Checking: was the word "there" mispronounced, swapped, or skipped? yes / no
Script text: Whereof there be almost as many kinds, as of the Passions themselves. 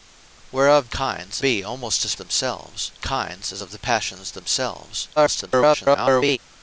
yes